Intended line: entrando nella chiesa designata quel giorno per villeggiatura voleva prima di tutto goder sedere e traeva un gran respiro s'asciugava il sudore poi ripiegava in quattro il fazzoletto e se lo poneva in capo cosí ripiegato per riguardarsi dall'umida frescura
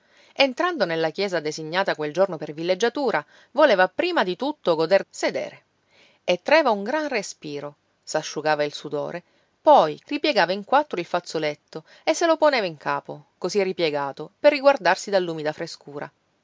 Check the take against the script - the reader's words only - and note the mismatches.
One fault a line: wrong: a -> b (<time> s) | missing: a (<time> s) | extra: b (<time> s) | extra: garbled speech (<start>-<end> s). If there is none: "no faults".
no faults